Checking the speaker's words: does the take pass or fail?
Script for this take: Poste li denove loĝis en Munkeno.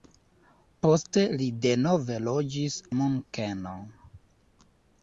fail